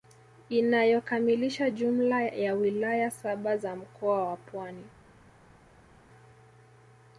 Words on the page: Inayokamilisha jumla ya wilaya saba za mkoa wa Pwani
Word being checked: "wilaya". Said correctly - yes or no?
yes